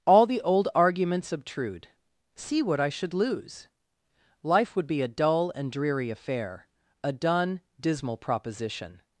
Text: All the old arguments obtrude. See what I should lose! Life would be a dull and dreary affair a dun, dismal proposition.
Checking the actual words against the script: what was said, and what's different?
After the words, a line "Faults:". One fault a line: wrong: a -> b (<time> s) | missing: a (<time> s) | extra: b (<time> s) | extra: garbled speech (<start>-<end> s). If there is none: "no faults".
All the old arguments obtrude. See what I should lose! Life would be a dull and dreary affair a dun, dismal proposition.
Faults:
no faults